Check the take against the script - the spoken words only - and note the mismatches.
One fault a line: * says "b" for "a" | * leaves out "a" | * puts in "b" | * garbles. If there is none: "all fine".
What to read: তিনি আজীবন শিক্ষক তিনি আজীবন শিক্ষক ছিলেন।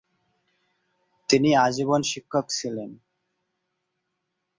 * leaves out "তিনি আজীবন শিক্ষক"